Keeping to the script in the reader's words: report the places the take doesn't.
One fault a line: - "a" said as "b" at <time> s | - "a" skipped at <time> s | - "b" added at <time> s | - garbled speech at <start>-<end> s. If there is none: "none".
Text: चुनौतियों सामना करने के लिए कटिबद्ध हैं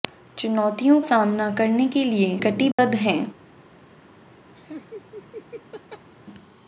none